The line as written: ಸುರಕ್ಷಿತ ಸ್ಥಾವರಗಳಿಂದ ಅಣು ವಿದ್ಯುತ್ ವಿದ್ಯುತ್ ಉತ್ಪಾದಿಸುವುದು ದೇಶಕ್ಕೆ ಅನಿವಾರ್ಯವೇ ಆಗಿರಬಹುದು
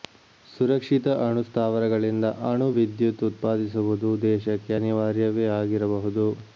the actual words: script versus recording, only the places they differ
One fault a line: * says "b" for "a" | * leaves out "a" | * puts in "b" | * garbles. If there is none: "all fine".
* puts in "ಅಣು"
* leaves out "ವಿದ್ಯುತ್"